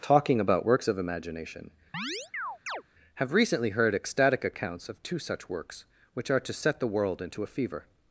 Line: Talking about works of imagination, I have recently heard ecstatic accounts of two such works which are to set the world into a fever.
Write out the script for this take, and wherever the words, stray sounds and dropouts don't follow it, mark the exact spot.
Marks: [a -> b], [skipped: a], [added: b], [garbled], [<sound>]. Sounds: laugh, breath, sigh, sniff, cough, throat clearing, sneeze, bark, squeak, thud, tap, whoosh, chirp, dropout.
Talking about works of imagination, [skipped: I] [chirp] have recently heard ecstatic accounts of two such works which are to set the world into a fever.